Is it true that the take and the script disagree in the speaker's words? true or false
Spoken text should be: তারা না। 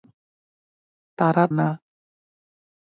false